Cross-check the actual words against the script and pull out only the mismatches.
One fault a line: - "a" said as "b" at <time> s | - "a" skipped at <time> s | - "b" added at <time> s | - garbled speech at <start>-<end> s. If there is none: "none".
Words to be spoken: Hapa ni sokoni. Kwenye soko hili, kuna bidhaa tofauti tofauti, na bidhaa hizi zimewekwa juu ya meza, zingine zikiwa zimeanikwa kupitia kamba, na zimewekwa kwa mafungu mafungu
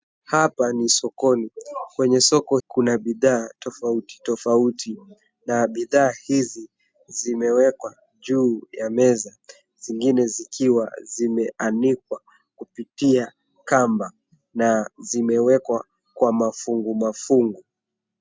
- "hili" skipped at 2.6 s